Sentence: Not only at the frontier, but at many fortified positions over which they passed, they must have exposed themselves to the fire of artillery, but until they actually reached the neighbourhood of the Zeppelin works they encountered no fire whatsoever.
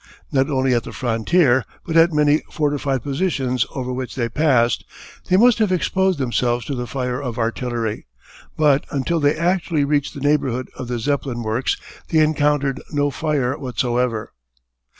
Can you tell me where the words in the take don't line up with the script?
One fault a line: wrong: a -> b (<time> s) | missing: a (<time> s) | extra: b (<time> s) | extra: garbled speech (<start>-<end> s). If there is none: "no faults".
no faults